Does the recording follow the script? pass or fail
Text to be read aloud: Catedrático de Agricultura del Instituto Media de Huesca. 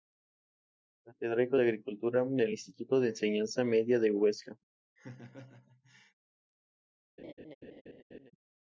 fail